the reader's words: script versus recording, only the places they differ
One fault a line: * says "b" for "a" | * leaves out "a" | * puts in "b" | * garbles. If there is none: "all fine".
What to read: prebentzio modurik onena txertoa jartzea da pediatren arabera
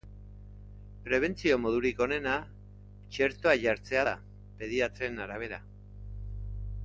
all fine